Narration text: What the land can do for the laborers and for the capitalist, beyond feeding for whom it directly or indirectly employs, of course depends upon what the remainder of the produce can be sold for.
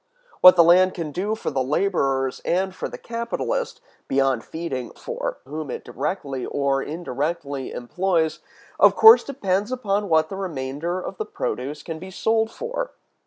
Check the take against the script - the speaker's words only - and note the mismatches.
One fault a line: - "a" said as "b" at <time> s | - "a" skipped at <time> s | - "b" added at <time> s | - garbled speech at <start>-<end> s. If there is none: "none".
none